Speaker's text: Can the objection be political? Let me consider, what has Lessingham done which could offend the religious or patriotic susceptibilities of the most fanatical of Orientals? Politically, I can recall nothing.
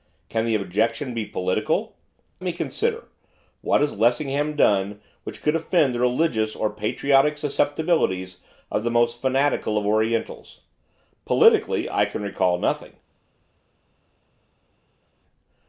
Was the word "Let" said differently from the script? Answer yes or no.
yes